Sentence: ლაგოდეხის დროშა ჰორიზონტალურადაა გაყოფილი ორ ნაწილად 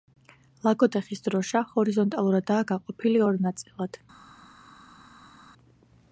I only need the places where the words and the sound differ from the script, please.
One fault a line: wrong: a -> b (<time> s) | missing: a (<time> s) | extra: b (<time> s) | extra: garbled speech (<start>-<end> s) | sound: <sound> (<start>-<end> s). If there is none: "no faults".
no faults